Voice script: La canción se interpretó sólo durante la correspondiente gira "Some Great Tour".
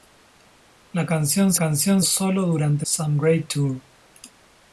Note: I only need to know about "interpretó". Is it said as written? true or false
false